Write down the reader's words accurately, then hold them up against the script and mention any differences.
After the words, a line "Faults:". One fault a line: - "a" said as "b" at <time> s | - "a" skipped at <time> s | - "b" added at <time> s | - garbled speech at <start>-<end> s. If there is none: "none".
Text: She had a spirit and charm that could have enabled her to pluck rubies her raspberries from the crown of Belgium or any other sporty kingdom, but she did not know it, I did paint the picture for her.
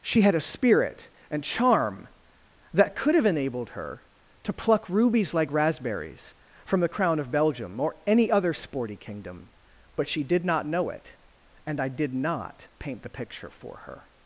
She had a spirit and charm that could have enabled her to pluck rubies like raspberries from the crown of Belgium or any other sporty kingdom, but she did not know it, and I did not paint the picture for her.
Faults:
- "her" said as "like" at 5.3 s
- "and" added at 11.7 s
- "not" added at 12.1 s